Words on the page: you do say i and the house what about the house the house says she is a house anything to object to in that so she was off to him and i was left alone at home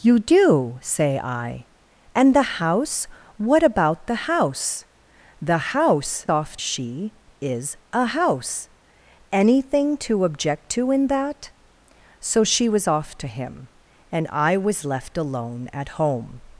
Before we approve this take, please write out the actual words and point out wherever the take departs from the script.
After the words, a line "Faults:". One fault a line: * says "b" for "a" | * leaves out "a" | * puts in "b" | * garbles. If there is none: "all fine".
you do say i and the house what about the house the house off she is a house anything to object to in that so she was off to him and i was left alone at home
Faults:
* says "off" for "says"